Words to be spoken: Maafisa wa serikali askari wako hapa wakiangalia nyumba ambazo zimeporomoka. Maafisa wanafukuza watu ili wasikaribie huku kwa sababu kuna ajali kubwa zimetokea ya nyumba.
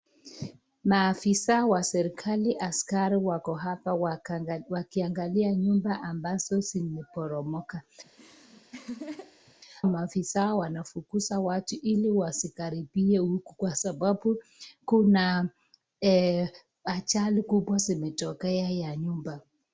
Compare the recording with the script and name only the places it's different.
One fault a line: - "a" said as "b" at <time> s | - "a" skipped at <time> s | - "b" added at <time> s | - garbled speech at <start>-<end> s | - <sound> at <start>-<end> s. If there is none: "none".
- laugh at 8.0-9.5 s